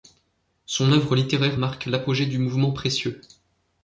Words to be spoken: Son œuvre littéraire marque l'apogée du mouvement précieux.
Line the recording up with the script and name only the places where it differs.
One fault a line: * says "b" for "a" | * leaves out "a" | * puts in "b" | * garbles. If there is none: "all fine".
all fine